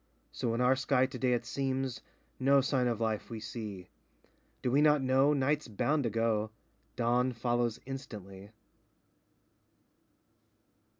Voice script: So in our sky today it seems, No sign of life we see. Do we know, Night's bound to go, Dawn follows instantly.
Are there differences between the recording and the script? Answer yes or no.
yes